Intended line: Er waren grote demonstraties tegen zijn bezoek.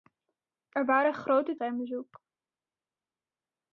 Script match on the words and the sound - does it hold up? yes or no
no